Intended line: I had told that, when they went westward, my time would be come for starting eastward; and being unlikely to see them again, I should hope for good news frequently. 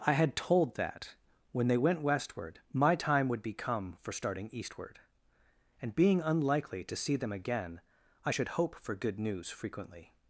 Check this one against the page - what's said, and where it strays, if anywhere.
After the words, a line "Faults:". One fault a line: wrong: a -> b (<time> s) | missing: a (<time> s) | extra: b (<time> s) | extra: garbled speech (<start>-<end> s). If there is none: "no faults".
I had told that, when they went westward, my time would be come for starting eastward; and being unlikely to see them again, I should hope for good news frequently.
Faults:
no faults